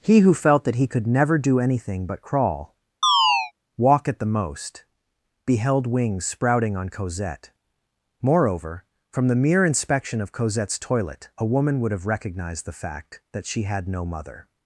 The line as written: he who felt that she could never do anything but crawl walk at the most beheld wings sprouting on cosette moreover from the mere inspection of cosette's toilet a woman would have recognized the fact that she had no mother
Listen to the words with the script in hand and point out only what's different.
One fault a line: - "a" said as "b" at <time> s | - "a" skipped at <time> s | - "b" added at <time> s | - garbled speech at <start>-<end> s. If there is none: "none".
- "she" said as "he" at 0.8 s